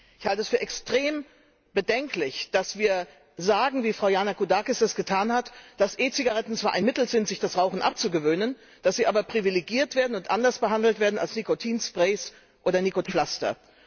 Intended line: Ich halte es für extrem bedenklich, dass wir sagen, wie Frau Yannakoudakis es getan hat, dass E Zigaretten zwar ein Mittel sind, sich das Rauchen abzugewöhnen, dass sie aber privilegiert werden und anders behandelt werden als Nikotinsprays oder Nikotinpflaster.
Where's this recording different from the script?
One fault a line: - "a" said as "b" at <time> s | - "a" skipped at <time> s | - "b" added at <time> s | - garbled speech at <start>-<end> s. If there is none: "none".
none